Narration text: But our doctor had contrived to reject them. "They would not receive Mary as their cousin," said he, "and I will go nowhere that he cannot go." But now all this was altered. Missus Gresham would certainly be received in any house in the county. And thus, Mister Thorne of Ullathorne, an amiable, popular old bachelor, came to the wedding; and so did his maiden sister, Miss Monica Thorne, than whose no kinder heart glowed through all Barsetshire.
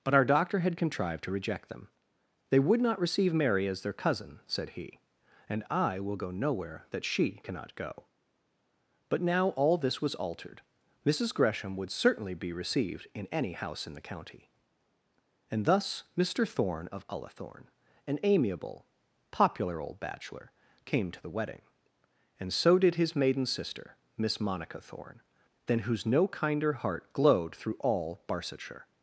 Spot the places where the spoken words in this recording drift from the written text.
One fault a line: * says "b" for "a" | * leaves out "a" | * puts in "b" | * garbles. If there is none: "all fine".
* says "she" for "he"